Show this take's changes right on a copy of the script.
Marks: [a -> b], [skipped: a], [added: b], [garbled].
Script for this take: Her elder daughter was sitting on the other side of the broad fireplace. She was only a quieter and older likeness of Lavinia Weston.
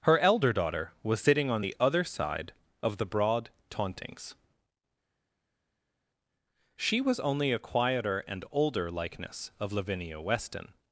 Her elder daughter was sitting on the other side of the broad [fireplace. -> tauntings] She was only a quieter and older likeness of Lavinia Weston.